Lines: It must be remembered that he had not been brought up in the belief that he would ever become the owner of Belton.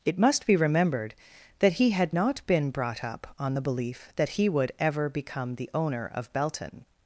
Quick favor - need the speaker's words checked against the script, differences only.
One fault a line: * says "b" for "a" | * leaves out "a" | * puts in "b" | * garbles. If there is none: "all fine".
* says "on" for "in"